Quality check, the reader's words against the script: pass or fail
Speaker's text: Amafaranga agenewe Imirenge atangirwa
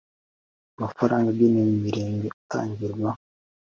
pass